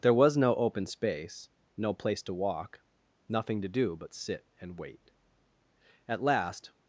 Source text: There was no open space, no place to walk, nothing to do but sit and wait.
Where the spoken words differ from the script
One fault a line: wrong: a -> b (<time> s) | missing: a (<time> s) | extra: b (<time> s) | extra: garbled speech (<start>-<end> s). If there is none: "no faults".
extra: At last (6.1 s)